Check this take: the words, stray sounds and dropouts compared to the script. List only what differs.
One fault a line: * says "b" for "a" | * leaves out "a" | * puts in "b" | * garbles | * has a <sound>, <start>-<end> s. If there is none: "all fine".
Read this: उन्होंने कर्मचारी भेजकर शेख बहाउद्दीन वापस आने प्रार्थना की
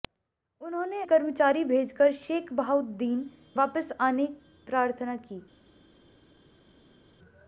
all fine